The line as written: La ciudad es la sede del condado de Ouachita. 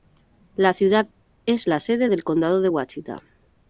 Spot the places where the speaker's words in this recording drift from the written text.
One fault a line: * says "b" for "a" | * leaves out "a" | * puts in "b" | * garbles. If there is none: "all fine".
all fine